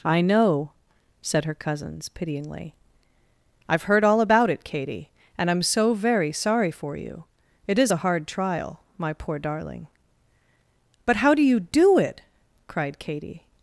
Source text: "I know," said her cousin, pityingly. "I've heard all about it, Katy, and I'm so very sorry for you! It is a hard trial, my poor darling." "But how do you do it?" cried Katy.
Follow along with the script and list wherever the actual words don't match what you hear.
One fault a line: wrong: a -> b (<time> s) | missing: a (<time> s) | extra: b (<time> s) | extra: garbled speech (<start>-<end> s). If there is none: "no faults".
wrong: cousin -> cousins (1.5 s)